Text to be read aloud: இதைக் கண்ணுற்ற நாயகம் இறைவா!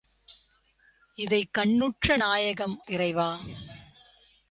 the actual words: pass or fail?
pass